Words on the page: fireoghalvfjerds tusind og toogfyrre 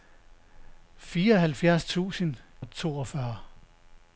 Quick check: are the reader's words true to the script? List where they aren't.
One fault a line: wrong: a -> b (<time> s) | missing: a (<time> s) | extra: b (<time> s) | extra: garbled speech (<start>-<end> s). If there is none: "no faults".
no faults